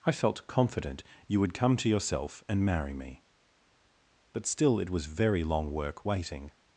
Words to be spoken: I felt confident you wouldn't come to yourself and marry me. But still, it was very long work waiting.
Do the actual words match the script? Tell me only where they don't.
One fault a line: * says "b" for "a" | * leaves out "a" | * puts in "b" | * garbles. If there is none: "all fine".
* says "would" for "wouldn't"